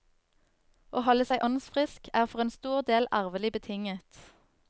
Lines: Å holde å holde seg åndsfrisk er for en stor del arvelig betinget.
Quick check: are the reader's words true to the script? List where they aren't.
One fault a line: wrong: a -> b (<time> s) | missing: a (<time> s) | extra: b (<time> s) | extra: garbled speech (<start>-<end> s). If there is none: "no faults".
missing: å holde (1.3 s)